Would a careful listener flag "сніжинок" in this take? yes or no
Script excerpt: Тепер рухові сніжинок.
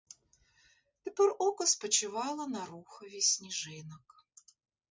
no